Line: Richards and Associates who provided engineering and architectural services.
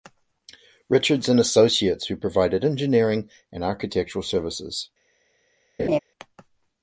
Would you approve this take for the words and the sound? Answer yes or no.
no